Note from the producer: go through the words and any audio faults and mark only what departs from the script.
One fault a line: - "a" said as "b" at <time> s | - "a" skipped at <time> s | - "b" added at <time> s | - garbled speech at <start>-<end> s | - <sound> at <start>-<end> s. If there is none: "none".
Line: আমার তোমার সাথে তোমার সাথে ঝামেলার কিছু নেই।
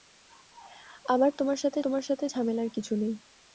none